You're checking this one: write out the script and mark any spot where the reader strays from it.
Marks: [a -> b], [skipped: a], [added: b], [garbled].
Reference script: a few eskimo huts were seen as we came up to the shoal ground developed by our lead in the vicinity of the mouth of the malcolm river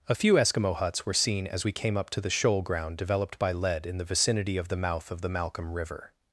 a few eskimo huts were seen as we came up to the shoal ground developed by [skipped: our] lead in the vicinity of the mouth of the malcolm river